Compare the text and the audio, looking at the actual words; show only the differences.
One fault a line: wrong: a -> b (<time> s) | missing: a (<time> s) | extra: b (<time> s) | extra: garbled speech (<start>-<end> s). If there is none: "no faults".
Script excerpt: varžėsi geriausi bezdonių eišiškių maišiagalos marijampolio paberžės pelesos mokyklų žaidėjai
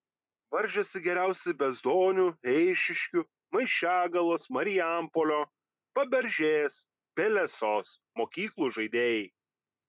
no faults